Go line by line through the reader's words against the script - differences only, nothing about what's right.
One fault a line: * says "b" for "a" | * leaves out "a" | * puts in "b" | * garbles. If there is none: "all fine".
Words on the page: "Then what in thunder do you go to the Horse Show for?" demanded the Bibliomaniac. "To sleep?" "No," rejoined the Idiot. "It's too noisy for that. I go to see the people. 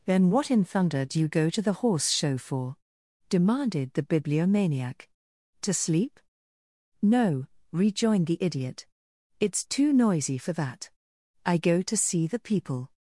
all fine